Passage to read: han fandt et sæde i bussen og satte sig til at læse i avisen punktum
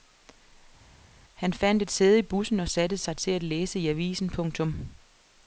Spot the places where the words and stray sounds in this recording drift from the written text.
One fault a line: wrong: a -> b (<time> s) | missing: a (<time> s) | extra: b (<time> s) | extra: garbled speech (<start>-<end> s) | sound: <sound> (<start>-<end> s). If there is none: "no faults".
no faults